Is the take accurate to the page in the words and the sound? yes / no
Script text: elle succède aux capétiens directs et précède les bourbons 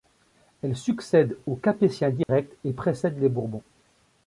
no